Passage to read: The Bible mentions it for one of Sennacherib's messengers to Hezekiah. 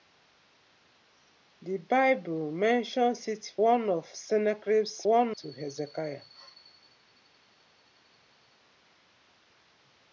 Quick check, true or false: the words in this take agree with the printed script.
false